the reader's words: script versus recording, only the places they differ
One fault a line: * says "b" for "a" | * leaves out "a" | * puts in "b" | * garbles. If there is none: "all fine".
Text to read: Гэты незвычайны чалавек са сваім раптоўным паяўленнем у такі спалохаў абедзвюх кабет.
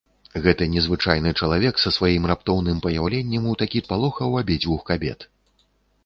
all fine